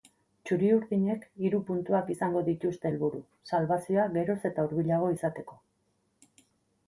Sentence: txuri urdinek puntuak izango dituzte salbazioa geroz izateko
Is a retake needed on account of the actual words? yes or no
yes